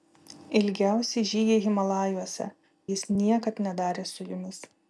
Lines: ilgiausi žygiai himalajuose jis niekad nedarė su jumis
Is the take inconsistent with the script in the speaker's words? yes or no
no